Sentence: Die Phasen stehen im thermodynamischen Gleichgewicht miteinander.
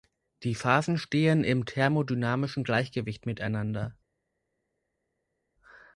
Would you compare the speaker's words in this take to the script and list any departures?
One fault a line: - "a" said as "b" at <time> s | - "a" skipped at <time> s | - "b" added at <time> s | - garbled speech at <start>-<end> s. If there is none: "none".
none